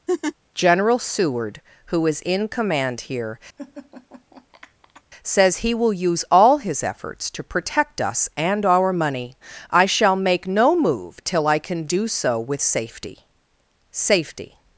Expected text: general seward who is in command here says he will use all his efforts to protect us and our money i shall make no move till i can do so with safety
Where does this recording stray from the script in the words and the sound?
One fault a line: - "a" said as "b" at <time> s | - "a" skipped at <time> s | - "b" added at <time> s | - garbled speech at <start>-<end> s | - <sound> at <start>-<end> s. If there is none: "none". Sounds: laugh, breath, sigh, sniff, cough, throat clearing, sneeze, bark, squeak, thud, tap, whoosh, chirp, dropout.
- laugh at 0.1-0.3 s
- laugh at 3.6-5.0 s
- "safety" added at 13.9 s